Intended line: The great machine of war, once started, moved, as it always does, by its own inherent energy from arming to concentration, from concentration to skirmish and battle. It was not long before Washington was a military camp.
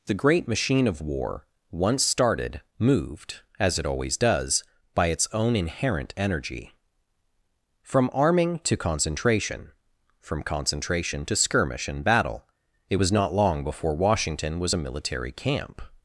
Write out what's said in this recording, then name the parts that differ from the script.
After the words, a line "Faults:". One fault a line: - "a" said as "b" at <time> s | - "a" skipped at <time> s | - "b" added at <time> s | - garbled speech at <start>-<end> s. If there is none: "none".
The great machine of war, once started, moved, as it always does, by its own inherent energy from arming to concentration, from concentration to skirmish and battle. It was not long before Washington was a military camp.
Faults:
none